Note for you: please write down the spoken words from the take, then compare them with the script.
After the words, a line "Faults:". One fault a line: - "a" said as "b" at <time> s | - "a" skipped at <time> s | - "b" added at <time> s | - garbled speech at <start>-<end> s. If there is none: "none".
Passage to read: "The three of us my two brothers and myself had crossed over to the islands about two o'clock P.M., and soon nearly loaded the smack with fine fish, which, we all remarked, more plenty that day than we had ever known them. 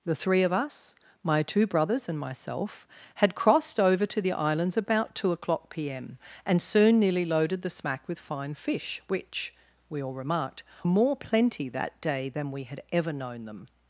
"The three of us my two brothers and myself had crossed over to the islands about two o'clock P.M., and soon nearly loaded the smack with fine fish, which, we all remarked, more plenty that day than we had ever known them.
Faults:
none